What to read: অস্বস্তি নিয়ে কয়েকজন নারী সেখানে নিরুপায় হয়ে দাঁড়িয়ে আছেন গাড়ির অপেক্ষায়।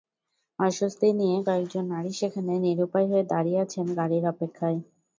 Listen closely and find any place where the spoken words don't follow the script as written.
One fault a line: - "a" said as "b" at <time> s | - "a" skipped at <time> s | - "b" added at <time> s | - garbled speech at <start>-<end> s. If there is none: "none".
none